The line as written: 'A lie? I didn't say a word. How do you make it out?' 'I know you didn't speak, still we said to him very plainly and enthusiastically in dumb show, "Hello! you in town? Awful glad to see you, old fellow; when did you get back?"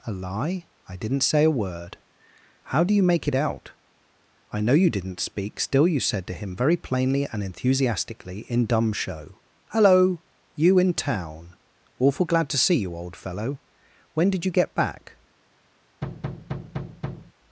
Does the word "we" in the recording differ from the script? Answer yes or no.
yes